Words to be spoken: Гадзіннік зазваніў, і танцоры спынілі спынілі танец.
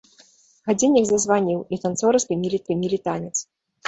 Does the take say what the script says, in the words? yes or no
yes